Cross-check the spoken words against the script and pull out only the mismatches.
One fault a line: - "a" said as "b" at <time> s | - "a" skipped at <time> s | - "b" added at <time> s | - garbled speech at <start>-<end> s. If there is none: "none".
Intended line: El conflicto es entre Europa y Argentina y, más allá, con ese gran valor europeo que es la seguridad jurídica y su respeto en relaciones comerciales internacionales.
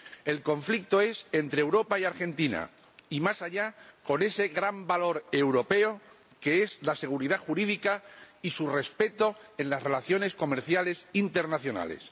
- "las" added at 9.7 s